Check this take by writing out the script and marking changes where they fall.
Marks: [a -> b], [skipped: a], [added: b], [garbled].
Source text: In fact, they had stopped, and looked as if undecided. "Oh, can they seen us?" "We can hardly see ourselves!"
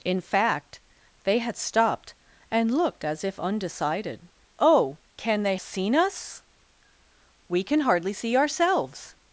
In fact, they had stopped, and looked as if undecided. "Oh, can they seen us?" "We can hardly see ourselves!"